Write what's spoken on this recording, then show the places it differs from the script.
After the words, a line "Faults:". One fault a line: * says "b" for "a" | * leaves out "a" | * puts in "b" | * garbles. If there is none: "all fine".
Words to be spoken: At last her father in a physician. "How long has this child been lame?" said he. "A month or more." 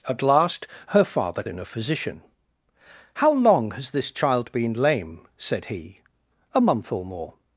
At last her father in a physician. "How long has this child been lame?" said he. "A month or more."
Faults:
all fine